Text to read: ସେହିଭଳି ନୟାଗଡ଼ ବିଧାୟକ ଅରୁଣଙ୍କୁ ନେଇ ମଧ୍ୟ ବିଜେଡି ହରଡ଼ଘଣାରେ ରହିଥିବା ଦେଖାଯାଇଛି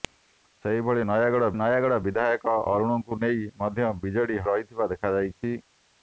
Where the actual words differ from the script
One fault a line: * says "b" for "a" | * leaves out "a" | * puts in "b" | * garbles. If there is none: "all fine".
* puts in "ନୟାଗଡ଼"
* leaves out "ହରଡ଼ଘଣାରେ"